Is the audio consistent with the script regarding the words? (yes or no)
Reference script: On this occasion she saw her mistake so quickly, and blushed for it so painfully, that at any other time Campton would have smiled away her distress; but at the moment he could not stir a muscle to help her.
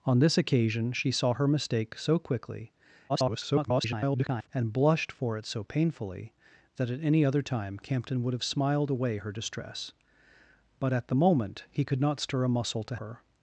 no